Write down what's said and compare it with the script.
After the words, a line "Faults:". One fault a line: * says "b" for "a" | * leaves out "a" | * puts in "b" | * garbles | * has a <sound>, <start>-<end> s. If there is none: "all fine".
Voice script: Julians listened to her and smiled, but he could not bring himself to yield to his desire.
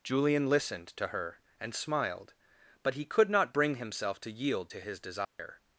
Julian listened to her and smiled, but he could not bring himself to yield to his desire.
Faults:
* says "Julian" for "Julians"
* has a dropout, 5.2-5.4 s